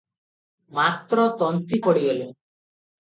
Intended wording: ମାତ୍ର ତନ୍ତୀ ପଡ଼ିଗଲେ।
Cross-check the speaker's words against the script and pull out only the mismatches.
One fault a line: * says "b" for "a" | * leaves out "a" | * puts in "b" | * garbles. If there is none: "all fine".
all fine